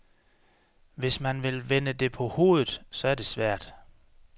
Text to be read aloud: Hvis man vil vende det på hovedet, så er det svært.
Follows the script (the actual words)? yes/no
yes